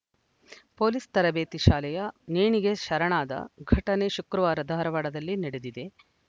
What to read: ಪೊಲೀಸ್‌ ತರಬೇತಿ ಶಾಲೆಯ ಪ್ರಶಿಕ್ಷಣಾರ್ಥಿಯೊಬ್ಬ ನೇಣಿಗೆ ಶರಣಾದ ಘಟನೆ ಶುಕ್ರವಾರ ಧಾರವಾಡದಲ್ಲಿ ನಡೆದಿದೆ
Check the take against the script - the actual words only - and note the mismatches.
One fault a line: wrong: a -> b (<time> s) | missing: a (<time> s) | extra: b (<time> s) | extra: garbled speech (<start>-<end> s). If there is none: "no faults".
missing: ಪ್ರಶಿಕ್ಷಣಾರ್ಥಿಯೊಬ್ಬ (2.0 s)